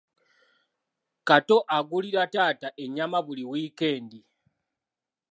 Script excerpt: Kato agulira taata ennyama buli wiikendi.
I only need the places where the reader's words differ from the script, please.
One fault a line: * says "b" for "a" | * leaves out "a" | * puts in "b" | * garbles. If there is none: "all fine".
all fine